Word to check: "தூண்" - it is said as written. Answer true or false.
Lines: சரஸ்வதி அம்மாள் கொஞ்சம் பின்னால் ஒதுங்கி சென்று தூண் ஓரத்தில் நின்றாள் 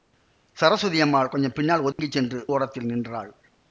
false